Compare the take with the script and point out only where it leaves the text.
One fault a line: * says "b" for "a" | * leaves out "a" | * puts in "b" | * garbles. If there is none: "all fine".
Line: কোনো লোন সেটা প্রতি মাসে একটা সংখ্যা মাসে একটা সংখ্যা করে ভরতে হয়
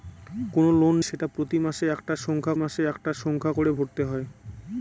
all fine